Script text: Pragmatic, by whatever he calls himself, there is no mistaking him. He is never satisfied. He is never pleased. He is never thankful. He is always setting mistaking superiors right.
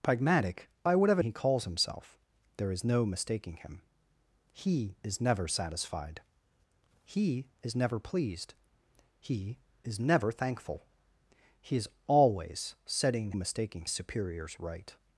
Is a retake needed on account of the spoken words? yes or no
no